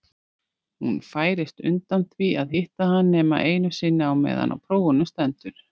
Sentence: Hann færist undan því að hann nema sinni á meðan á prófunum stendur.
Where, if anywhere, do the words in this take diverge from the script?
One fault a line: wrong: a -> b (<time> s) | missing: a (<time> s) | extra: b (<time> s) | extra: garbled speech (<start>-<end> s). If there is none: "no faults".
wrong: Hann -> Hún (0.8 s)
extra: hitta (2.6 s)
extra: einu (3.5 s)